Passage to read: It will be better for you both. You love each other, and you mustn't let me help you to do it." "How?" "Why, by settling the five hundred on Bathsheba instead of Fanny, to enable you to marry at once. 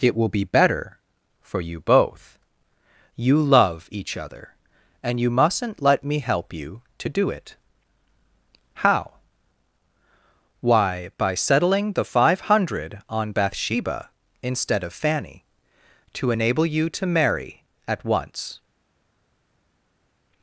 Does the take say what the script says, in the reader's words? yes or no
yes